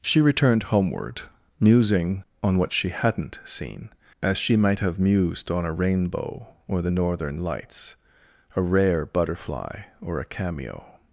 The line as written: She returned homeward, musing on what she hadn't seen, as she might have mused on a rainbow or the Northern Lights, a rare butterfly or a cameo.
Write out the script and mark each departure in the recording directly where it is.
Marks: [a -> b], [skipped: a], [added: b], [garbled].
She returned homeward, musing on what she hadn't seen, as she might have mused on a rainbow or the Northern Lights, a rare butterfly or a cameo.